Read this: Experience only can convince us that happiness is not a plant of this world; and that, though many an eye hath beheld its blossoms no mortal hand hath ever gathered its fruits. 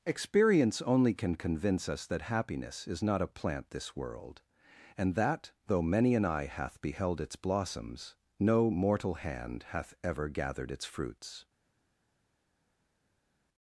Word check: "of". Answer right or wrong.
wrong